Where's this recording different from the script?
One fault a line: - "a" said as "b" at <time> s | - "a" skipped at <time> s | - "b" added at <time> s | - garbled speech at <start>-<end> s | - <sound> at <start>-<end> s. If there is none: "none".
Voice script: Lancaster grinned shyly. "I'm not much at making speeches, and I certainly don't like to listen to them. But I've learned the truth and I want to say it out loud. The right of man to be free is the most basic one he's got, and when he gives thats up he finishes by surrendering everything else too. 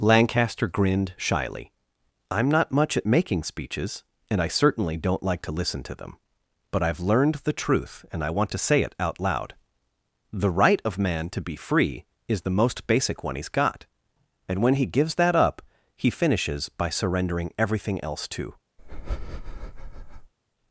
- "thats" said as "that" at 15.2 s
- breath at 18.8-20.3 s